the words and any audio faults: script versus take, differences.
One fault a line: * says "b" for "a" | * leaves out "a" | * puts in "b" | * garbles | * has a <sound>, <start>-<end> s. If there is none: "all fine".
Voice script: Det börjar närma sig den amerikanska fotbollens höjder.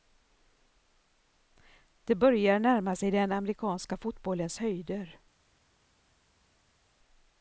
all fine